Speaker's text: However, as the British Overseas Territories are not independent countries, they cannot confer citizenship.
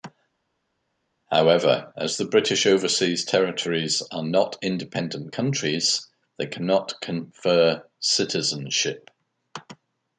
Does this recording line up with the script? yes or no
yes